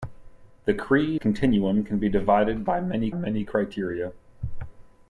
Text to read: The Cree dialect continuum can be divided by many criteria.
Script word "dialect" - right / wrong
wrong